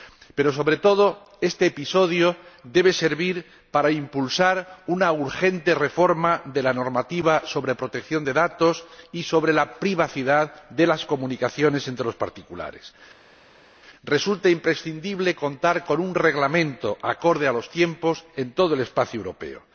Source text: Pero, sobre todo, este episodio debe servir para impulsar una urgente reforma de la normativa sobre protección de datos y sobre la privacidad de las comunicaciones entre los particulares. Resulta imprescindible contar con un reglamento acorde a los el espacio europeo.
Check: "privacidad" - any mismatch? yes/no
no